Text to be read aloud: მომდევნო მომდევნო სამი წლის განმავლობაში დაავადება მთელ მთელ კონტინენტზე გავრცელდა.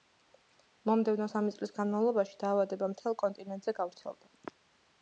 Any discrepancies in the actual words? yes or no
yes